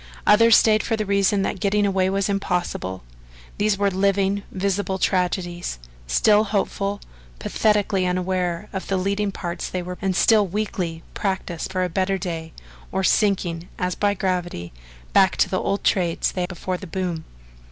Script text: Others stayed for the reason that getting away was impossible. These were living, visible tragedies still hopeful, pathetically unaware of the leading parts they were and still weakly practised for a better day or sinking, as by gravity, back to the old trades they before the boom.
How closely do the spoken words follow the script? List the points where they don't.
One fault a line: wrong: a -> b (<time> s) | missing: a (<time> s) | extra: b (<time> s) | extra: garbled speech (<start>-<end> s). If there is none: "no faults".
no faults